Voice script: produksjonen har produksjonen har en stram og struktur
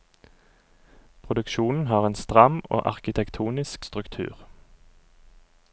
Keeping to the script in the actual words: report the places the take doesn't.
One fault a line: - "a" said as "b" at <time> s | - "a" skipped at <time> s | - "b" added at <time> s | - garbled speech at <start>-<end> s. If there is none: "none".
- "produksjonen har" skipped at 2.0 s
- "arkitektonisk" added at 2.9 s